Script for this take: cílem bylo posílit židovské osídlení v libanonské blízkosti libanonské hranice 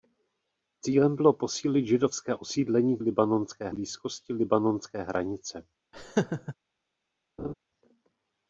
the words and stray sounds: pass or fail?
fail